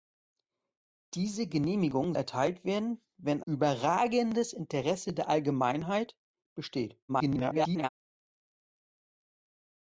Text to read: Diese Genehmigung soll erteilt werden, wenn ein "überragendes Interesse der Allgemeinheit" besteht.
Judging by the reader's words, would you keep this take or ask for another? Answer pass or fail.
fail